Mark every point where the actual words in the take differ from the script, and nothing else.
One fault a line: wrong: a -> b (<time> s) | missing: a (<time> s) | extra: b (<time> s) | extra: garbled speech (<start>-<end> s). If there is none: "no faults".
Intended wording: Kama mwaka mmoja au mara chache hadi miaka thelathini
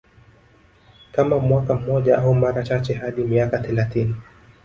no faults